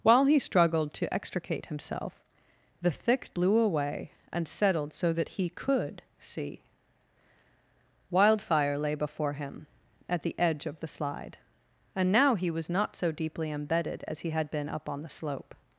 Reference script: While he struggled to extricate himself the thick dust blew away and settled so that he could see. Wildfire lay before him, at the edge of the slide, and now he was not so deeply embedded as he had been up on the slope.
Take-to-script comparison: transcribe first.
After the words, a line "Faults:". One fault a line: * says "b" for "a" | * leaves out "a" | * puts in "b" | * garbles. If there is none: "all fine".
While he struggled to extricate himself the thick blew away and settled so that he could see. Wildfire lay before him, at the edge of the slide, and now he was not so deeply embedded as he had been up on the slope.
Faults:
* leaves out "dust"